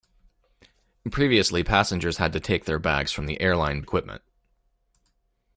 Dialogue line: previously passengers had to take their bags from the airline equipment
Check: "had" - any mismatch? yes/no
no